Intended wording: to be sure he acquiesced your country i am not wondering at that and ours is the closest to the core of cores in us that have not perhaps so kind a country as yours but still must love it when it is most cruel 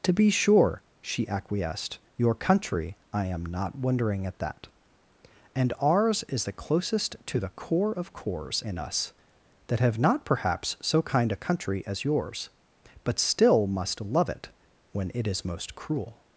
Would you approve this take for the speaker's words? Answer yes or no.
no